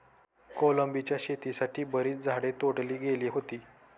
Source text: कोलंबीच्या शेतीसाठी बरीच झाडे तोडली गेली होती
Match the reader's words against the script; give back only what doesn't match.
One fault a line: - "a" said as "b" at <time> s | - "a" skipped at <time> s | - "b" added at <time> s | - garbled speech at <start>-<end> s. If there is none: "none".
none